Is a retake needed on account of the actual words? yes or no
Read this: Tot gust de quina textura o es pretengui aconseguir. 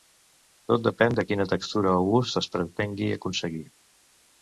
yes